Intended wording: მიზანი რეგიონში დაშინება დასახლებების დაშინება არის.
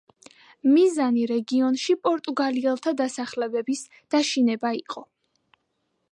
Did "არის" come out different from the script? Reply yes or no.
yes